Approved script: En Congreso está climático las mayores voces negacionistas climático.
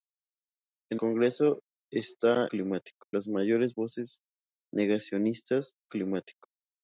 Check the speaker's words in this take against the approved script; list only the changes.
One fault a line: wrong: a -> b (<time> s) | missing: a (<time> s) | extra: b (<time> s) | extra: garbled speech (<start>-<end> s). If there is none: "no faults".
no faults